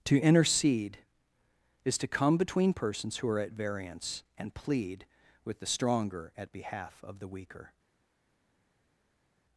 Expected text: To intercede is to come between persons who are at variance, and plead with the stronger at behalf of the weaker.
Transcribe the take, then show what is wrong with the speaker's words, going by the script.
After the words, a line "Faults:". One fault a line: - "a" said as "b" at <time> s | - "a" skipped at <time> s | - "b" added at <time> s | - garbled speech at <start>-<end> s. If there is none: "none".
To intercede is to come between persons who are at variance, and plead with the stronger at behalf of the weaker.
Faults:
none